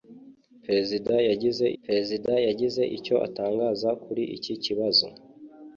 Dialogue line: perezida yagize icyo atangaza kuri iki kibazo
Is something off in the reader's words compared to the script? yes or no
yes